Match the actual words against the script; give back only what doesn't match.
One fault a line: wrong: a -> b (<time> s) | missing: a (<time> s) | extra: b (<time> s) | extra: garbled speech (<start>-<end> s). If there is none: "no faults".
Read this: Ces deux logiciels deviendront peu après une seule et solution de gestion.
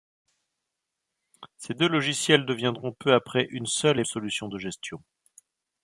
no faults